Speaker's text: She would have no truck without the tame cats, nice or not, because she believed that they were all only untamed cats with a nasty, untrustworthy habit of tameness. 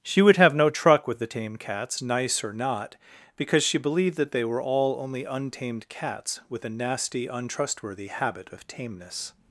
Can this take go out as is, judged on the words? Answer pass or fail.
fail